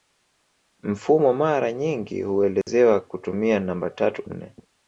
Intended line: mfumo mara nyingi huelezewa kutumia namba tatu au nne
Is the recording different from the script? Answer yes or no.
yes